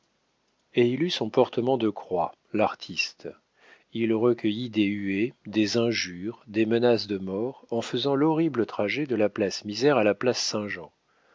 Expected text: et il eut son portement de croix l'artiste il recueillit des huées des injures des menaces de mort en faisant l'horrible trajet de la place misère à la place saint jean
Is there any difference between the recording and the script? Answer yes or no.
no